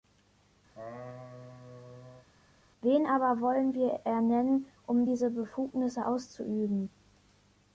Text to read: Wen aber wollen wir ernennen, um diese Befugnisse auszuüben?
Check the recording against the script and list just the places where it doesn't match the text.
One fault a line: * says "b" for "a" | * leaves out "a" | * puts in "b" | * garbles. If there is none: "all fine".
all fine